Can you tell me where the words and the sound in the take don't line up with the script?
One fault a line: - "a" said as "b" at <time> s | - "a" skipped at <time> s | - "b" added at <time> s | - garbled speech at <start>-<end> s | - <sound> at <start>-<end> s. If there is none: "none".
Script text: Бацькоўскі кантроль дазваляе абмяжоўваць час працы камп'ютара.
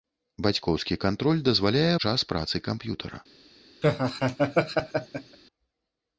- "абмяжоўваць" skipped at 1.9 s
- laugh at 3.8-5.4 s